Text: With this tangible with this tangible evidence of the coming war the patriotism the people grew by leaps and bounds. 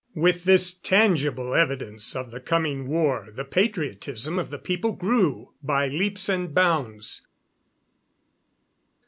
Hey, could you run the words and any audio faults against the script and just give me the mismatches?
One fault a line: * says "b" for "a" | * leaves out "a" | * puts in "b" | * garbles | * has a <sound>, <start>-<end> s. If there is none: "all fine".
* leaves out "with this tangible"
* puts in "of"